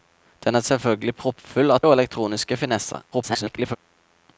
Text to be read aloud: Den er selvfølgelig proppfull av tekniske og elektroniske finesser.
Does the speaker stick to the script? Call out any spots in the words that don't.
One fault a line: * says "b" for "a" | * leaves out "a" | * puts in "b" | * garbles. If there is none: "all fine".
* leaves out "tekniske"
* garbles